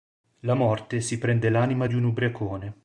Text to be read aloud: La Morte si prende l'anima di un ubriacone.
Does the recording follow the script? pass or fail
pass